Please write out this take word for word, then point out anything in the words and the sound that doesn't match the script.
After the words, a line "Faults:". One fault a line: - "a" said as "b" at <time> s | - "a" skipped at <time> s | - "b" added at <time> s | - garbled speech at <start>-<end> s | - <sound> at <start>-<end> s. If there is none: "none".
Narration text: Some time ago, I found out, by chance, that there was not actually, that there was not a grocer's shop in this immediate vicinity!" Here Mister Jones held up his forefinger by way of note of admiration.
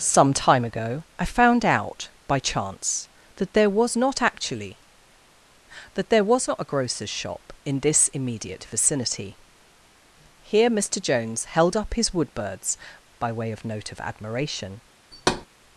Some time ago, I found out, by chance, that there was not actually, that there was not a grocer's shop in this immediate vicinity!" Here Mister Jones held up his woodbirds by way of note of admiration.
Faults:
- "forefinger" said as "woodbirds" at 12.2 s
- thud at 15.1-15.5 s